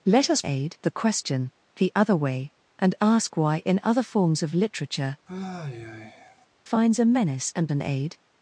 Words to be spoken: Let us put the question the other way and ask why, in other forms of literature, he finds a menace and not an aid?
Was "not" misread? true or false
true